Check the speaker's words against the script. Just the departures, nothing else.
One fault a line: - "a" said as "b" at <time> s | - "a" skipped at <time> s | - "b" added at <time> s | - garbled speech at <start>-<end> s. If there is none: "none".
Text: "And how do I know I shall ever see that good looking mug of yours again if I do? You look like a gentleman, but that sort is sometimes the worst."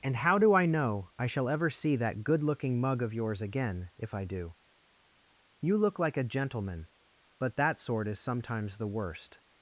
none